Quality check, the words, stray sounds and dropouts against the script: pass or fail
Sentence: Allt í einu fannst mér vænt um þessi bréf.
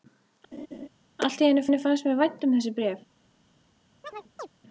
fail